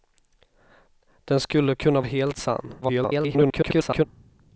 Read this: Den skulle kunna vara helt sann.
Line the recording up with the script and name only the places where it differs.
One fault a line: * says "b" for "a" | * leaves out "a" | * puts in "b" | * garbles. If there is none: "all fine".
* leaves out "vara"
* garbles